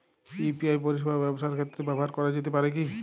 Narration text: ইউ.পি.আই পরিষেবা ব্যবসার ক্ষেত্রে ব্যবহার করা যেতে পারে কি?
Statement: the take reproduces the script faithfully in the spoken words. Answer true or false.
true